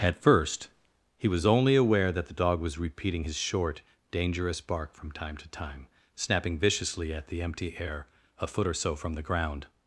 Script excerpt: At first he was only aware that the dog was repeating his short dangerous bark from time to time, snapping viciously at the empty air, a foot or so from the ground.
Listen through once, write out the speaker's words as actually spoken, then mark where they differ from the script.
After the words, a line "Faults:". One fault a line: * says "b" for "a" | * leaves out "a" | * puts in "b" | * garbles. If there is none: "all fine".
At first he was only aware that the dog was repeating his short dangerous bark from time to time, snapping viciously at the empty air, a foot or so from the ground.
Faults:
all fine